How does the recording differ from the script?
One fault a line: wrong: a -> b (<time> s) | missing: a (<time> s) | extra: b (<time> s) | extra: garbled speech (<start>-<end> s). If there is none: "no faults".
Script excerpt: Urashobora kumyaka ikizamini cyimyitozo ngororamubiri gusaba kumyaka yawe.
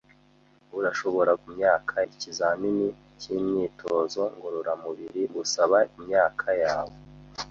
no faults